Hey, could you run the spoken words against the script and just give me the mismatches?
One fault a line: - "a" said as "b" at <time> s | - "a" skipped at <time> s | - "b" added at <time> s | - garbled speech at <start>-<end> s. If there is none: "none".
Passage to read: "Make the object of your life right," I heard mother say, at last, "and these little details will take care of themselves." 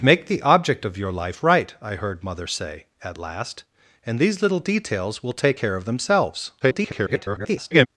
- garbled speech at 6.6-7.9 s